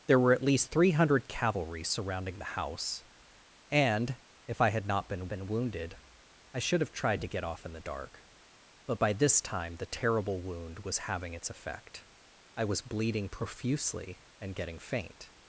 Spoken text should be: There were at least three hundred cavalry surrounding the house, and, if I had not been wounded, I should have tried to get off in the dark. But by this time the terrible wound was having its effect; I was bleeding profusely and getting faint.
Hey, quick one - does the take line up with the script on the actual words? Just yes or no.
no